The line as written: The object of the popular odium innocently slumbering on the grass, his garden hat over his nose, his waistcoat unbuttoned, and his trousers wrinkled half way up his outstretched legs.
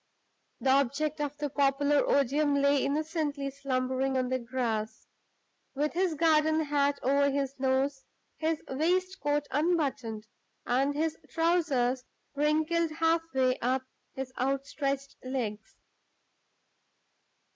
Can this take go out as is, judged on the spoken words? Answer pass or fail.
fail